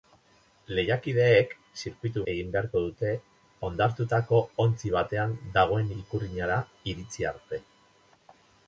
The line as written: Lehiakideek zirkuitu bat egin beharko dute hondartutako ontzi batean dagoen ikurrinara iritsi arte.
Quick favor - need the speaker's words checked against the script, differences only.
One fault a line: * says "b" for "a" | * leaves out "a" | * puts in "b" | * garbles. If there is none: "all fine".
* leaves out "bat"